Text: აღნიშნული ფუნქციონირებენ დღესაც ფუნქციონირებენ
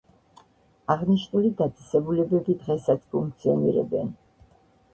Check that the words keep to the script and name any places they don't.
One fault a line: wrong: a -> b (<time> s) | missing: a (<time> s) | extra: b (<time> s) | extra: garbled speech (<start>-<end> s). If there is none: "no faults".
wrong: ფუნქციონირებენ -> დაწესებულებები (1.6 s)